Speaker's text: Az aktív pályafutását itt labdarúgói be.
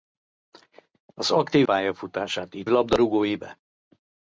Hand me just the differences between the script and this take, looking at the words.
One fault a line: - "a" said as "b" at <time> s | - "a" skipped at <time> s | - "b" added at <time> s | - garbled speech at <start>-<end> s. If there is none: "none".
none